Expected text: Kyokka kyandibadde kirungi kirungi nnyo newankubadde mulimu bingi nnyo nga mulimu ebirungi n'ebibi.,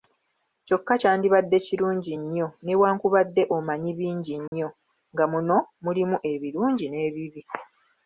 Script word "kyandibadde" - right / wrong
right